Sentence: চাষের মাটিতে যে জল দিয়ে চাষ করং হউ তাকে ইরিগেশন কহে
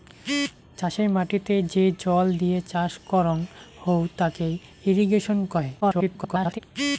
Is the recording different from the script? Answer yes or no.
yes